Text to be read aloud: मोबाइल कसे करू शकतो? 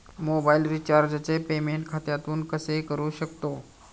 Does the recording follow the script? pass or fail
fail